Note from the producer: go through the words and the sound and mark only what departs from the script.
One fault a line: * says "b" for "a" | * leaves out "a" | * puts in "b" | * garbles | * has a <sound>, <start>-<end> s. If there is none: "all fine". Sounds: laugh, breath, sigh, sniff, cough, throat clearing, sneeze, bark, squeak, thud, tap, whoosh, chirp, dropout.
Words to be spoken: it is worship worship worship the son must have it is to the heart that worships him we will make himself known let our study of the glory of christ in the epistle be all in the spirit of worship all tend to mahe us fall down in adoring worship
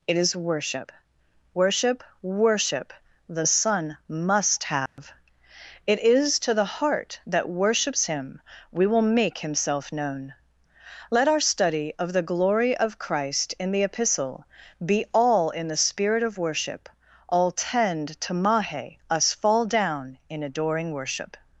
* has a dropout, 4.9-5.0 s